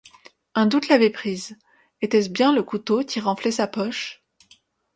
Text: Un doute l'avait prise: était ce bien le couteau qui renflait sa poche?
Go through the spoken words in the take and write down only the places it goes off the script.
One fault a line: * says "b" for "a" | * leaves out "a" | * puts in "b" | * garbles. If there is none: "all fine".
all fine